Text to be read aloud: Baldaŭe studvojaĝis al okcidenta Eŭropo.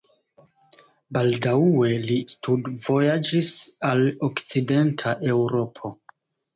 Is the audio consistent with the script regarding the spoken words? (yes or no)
no